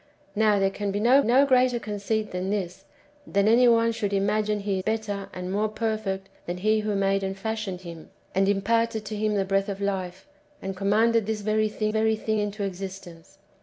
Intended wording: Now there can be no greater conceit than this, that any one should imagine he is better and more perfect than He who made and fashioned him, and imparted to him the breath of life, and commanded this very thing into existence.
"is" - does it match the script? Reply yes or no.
no